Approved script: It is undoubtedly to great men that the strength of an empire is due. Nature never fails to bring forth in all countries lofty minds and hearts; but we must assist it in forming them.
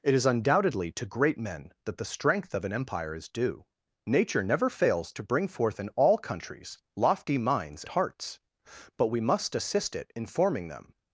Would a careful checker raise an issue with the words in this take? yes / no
yes